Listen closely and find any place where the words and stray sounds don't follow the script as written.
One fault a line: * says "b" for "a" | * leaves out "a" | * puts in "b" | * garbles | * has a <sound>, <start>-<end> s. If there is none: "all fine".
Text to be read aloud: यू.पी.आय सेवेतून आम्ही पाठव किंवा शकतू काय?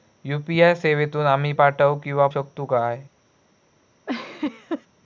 * has a laugh, 4.1-4.9 s